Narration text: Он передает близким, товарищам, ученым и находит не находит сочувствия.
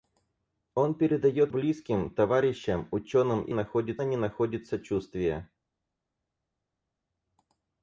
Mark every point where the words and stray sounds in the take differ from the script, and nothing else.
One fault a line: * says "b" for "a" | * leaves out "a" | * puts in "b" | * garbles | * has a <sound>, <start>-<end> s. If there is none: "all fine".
all fine